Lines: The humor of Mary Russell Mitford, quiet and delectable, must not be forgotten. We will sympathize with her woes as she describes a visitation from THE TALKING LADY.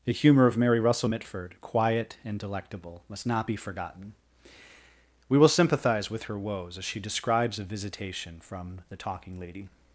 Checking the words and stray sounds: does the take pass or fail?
pass